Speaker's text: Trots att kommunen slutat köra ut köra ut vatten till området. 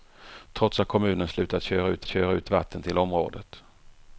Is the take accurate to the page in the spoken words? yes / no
yes